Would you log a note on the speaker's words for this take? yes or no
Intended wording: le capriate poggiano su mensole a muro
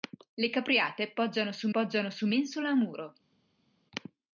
yes